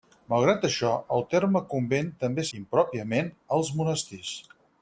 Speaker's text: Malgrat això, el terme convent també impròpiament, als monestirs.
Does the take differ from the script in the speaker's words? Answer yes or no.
no